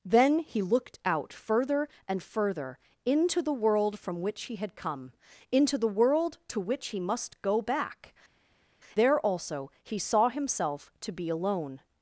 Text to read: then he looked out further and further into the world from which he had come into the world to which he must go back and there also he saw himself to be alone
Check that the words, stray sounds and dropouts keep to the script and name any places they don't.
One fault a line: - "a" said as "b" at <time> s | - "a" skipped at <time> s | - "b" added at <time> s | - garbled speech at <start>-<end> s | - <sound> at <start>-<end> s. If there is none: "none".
- "and" skipped at 8.1 s